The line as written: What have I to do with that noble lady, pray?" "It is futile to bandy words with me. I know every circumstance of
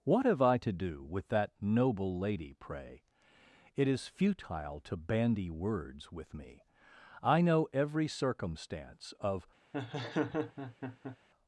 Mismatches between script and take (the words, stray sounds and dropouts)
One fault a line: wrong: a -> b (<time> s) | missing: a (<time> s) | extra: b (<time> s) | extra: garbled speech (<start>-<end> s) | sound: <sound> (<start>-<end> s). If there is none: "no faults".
sound: laugh (9.7-11.2 s)